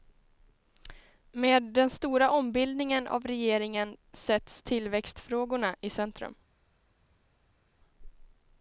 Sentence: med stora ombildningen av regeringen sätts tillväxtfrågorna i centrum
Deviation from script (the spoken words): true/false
true